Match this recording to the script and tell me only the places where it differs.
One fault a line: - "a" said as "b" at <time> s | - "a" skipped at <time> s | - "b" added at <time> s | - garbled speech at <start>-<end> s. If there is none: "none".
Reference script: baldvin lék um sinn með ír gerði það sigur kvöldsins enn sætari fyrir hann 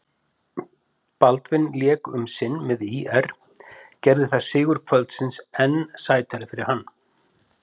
none